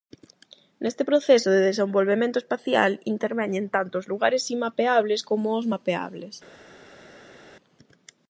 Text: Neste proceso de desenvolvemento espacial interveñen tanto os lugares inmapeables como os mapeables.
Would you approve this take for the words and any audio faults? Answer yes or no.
yes